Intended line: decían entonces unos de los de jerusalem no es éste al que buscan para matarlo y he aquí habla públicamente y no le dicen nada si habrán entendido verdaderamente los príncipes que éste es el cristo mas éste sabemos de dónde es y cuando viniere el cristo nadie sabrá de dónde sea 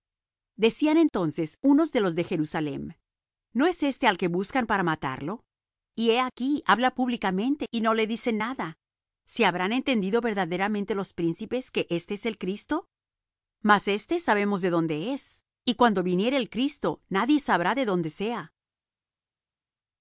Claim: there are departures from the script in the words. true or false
false